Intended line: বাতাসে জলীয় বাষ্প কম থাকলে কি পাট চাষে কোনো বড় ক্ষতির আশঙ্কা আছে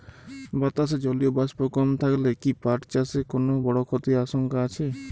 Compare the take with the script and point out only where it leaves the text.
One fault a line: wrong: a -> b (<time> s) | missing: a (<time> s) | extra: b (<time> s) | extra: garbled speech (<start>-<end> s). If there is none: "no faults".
no faults